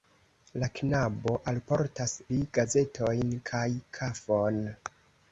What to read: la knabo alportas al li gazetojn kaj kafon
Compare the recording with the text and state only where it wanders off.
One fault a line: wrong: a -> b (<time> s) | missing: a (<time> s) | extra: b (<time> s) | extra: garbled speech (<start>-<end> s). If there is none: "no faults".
missing: al (2.1 s)